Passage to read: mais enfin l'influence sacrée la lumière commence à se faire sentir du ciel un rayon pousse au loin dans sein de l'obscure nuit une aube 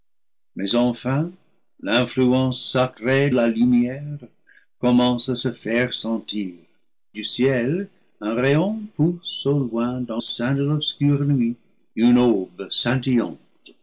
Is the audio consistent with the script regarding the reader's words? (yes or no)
yes